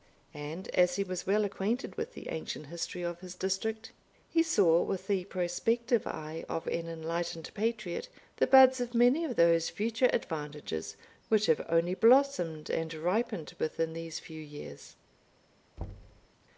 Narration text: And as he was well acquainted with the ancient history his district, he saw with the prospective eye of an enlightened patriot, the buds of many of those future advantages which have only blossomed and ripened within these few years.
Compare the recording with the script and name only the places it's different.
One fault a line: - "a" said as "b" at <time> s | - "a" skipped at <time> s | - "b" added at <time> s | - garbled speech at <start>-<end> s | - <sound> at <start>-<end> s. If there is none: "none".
- "of" added at 3.0 s
- thud at 15.8-16.3 s